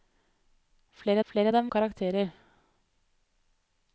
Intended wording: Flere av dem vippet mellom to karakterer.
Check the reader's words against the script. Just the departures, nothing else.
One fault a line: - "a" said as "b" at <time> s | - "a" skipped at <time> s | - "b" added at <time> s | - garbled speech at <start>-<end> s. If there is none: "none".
- "flere" added at 1.3 s
- "vippet mellom to" skipped at 1.7 s